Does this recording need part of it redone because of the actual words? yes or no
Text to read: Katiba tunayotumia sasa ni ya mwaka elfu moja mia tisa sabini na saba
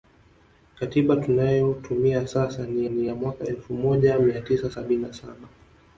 yes